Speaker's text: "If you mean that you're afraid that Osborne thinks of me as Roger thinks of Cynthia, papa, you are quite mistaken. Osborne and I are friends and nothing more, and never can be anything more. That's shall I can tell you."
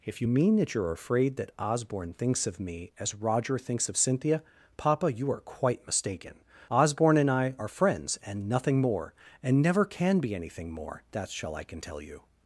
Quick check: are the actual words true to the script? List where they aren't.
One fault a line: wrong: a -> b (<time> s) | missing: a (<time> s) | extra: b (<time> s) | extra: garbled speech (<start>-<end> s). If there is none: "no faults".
no faults